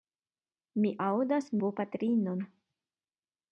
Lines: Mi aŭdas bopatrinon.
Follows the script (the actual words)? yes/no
yes